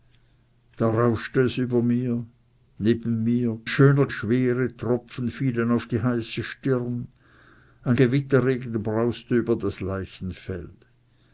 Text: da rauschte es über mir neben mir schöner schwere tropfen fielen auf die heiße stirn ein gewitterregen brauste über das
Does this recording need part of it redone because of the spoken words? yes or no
no